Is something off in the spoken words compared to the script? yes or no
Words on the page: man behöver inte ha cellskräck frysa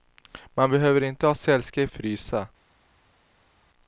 no